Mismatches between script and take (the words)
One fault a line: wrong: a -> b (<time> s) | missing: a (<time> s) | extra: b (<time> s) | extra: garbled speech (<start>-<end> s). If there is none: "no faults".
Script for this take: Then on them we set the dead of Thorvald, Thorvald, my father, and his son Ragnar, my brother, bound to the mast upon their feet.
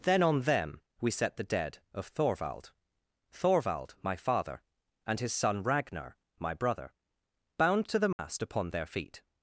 no faults